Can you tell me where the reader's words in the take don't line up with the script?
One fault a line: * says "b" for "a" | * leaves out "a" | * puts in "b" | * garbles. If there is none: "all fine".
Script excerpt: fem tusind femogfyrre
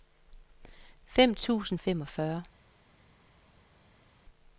all fine